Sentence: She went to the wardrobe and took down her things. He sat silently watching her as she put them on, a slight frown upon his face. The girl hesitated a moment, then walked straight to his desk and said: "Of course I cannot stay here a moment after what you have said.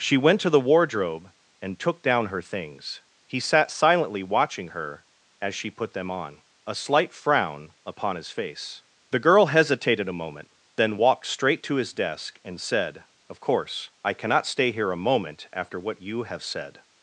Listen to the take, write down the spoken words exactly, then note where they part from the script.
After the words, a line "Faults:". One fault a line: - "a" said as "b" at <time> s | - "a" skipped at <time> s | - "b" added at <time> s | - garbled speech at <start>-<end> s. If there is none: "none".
She went to the wardrobe and took down her things. He sat silently watching her as she put them on, a slight frown upon his face. The girl hesitated a moment, then walked straight to his desk and said: "Of course I cannot stay here a moment after what you have said.
Faults:
none